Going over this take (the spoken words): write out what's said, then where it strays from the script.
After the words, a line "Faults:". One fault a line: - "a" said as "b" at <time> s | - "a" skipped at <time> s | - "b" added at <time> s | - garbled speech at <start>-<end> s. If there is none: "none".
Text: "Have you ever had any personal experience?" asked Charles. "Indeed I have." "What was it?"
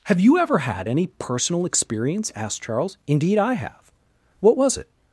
"Have you ever had any personal experience?" asked Charles. "Indeed I have." "What was it?"
Faults:
none